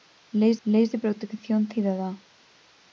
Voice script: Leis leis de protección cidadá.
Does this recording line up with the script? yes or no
yes